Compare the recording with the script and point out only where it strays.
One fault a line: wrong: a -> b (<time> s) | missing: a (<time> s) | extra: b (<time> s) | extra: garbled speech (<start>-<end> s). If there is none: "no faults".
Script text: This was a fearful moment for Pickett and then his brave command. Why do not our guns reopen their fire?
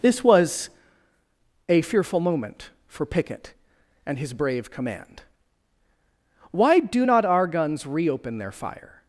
missing: then (4.2 s)